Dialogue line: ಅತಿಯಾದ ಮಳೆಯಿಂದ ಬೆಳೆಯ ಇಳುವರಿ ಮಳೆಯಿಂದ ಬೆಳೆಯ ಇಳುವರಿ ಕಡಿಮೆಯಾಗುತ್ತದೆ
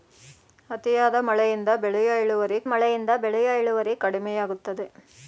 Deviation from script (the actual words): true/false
false